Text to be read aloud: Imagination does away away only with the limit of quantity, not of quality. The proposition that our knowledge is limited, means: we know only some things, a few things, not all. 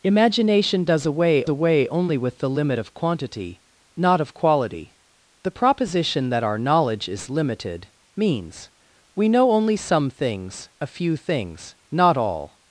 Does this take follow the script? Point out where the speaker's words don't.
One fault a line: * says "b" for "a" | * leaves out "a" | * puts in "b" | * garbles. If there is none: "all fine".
all fine